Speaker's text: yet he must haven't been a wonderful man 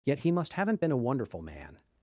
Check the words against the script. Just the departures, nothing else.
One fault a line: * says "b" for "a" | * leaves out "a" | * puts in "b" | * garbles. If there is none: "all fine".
all fine